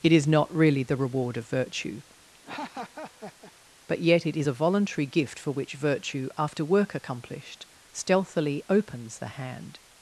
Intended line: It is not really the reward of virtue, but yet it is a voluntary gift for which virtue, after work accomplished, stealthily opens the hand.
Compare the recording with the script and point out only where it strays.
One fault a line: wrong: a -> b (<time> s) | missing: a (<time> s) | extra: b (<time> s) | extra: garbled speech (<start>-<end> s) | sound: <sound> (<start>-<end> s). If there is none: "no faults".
sound: laugh (2.3-3.5 s)